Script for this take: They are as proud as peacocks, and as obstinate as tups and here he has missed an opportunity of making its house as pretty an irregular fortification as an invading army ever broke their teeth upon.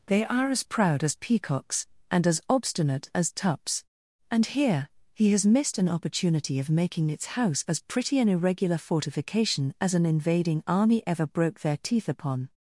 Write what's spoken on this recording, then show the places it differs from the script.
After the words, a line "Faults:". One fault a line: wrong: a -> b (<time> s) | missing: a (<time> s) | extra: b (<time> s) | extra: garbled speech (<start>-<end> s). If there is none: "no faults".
They are as proud as peacocks, and as obstinate as tups and here he has missed an opportunity of making its house as pretty an irregular fortification as an invading army ever broke their teeth upon.
Faults:
no faults